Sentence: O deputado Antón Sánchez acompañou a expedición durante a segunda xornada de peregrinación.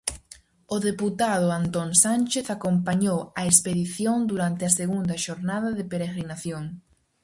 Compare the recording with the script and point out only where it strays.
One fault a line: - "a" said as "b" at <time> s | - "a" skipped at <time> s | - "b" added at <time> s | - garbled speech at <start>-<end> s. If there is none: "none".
none